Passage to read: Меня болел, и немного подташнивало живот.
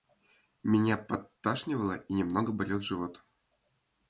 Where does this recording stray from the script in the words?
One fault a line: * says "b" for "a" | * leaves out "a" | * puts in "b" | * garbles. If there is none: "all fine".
* says "подташнивало" for "болел"
* says "болел" for "подташнивало"